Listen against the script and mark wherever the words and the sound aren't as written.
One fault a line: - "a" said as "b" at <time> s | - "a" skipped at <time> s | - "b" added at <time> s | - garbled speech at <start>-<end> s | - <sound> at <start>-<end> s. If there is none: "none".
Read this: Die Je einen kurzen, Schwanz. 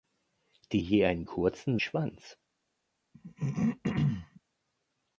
- throat clearing at 3.1-4.4 s